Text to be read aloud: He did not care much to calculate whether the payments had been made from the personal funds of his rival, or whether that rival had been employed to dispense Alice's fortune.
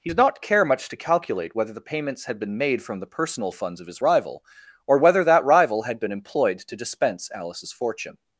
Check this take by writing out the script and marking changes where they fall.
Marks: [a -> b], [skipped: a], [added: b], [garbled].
He did not care much to calculate whether the payments had been made from the personal funds of his rival, or whether that rival had been employed to dispense Alice's fortune.